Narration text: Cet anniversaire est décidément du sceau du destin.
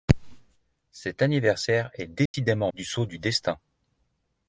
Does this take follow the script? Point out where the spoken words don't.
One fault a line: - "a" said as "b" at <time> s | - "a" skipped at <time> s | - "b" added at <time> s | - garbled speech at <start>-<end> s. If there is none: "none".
none